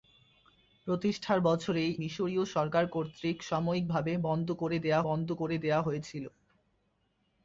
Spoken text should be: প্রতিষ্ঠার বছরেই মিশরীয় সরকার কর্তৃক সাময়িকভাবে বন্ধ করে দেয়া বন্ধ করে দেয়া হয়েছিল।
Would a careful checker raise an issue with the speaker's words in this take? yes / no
no